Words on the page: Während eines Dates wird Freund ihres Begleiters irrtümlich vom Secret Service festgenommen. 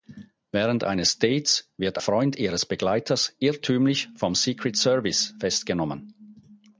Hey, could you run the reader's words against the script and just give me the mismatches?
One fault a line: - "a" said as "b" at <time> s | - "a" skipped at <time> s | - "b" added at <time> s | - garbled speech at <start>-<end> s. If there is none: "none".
none